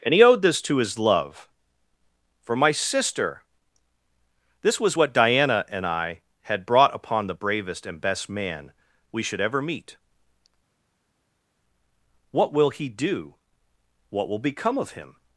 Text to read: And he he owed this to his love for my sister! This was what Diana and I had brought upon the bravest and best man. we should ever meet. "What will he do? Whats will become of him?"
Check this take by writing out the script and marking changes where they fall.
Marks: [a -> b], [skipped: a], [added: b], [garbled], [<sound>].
And he [skipped: he] owed this to his love for my sister! This was what Diana and I had brought upon the bravest and best man. we should ever meet. "What will he do? [Whats -> What] will become of him?"